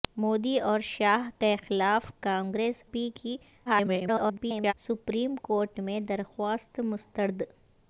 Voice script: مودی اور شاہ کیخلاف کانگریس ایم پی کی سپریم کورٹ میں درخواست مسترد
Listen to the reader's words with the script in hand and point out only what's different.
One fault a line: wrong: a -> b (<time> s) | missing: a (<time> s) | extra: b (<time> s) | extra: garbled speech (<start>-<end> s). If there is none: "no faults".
missing: ایم (2.8 s)
extra: garbled speech (3.7-4.7 s)